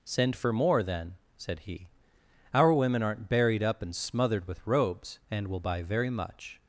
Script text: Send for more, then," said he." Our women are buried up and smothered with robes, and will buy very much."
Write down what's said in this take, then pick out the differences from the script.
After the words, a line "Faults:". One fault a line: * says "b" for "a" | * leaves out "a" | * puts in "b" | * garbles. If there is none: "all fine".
Send for more, then," said he." Our women aren't buried up and smothered with robes, and will buy very much."
Faults:
* says "aren't" for "are"